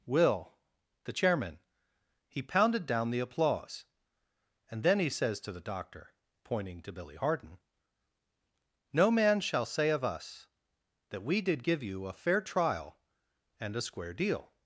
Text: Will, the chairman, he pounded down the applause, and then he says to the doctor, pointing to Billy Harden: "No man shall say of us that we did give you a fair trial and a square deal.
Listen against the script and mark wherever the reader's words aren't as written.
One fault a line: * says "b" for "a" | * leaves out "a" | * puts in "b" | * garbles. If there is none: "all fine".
all fine